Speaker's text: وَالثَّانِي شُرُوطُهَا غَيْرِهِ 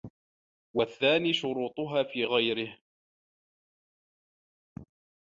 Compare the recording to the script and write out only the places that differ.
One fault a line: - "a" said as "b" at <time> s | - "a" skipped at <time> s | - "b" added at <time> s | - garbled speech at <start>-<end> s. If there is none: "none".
- "فِي" added at 2.0 s